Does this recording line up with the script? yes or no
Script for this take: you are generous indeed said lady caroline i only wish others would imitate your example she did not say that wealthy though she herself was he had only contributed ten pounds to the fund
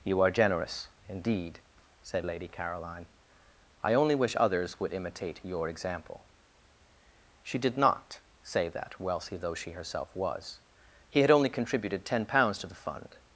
yes